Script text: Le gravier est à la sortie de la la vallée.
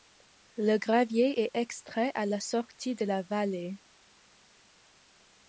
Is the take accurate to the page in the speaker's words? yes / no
no